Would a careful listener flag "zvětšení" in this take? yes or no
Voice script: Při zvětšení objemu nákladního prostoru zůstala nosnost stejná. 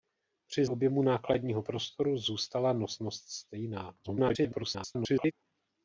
yes